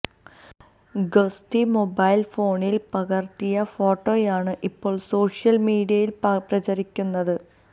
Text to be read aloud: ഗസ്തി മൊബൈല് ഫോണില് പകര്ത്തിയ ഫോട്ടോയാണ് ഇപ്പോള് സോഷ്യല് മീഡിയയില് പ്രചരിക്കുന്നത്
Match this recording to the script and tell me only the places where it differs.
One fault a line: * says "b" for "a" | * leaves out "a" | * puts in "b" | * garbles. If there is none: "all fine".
all fine